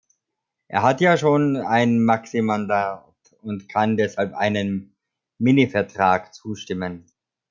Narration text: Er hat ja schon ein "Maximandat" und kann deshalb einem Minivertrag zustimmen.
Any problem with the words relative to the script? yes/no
no